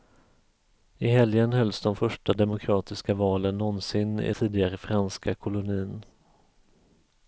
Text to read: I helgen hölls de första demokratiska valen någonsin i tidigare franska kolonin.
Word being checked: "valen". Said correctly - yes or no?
yes